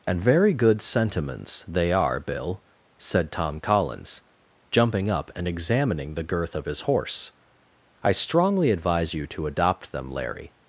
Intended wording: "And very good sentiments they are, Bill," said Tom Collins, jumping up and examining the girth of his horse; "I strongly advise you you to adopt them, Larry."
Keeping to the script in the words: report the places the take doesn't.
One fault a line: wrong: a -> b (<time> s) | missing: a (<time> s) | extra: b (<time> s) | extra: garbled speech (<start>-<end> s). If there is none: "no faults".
missing: you (9.3 s)